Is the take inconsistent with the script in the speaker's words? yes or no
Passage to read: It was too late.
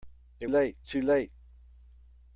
yes